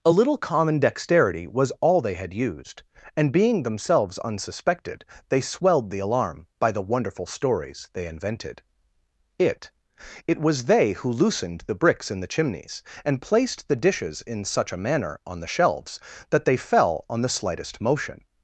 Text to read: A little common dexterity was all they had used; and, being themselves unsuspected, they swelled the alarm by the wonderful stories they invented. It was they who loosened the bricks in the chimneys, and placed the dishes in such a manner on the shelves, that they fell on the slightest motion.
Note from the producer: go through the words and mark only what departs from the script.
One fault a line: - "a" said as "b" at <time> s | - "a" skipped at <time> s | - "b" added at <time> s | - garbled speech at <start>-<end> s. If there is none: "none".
- "It" added at 10.3 s